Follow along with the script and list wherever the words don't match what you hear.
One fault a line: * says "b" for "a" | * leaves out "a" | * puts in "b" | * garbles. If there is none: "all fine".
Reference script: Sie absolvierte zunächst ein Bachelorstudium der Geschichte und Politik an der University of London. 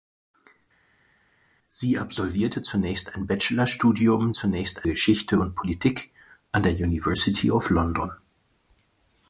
* says "zunächst" for "der"